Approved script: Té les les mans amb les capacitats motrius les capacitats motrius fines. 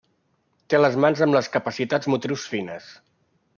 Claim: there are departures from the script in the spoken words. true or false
true